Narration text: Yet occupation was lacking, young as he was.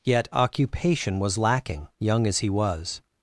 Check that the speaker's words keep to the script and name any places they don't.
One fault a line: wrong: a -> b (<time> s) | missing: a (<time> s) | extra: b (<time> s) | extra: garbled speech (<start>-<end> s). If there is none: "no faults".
no faults